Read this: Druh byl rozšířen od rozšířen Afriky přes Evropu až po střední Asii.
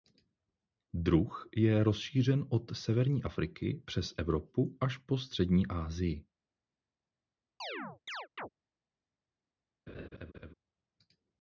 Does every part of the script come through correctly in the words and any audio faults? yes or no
no